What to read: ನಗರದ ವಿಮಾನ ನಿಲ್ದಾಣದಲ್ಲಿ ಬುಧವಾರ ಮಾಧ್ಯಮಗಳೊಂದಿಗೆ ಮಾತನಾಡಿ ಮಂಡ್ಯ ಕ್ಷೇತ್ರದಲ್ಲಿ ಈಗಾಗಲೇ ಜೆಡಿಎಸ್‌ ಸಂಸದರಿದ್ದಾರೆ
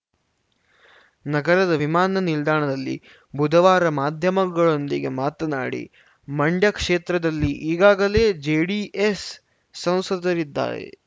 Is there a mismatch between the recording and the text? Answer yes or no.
no